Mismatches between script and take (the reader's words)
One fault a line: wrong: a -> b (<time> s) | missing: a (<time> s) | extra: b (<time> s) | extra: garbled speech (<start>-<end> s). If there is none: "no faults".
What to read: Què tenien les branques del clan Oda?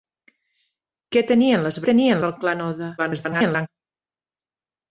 wrong: branques -> tenien (1.9 s)
extra: garbled speech (3.0-3.7 s)